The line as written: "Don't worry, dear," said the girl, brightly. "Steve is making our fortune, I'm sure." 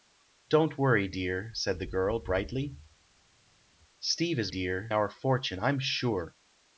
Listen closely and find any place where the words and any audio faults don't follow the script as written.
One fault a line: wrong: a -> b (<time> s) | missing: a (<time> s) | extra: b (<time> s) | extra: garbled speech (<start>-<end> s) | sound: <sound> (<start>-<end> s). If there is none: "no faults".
wrong: making -> dear (4.5 s)